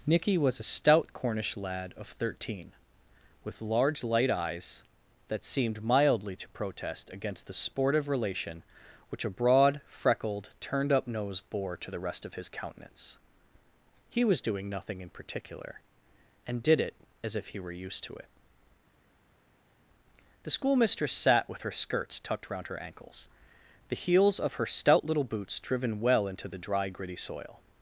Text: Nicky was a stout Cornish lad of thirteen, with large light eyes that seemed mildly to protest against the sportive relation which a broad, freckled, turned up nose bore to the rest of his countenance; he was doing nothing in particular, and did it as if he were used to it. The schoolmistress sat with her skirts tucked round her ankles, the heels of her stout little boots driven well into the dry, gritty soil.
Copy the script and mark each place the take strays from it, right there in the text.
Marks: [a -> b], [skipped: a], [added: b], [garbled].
Nicky was a stout Cornish lad of thirteen, with large light eyes that seemed mildly to protest against the sportive relation which a broad, freckled, turned up nose bore to the rest of his countenance; he was doing nothing in particular, and did it as if he were used to it. The schoolmistress sat with her skirts tucked round her ankles, the heels of her stout little boots driven well into the dry, gritty soil.